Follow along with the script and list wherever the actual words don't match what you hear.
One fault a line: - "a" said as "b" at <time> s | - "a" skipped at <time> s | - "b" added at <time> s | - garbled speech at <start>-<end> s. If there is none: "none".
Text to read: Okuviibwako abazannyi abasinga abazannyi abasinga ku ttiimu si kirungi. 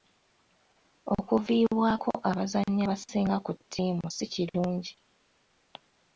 - "abazannyi abasinga" skipped at 3.4 s